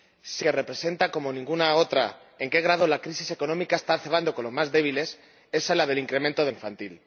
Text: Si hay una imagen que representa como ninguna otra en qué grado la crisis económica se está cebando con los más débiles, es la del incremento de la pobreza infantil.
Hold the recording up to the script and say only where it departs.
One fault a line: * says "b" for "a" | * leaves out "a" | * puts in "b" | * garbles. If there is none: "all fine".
* leaves out "hay una imagen"
* leaves out "se"
* leaves out "la pobreza"